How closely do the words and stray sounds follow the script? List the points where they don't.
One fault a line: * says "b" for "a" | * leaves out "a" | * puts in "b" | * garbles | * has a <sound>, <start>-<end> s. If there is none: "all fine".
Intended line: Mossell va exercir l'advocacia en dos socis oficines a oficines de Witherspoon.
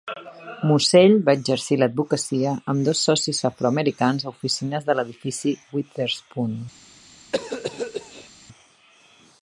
* says "amb" for "en"
* says "afroamericans" for "oficines"
* puts in "l'edifici"
* has a cough, 7.3-8.3 s